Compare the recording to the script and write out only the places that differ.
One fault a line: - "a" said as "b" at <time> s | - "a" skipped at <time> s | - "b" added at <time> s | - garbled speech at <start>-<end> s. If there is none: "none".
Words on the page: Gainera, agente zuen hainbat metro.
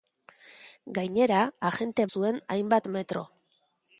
none